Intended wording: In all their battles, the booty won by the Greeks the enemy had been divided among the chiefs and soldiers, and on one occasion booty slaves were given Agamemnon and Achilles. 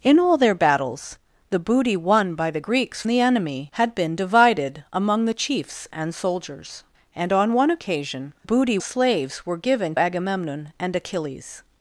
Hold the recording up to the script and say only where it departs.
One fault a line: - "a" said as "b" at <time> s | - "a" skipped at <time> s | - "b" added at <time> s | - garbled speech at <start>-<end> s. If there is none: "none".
none